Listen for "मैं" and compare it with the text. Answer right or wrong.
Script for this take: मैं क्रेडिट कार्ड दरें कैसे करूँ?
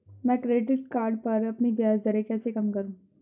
right